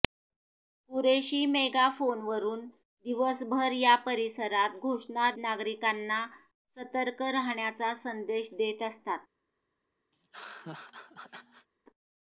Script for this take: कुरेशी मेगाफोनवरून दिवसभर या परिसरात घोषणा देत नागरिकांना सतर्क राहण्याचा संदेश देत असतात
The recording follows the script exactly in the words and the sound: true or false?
false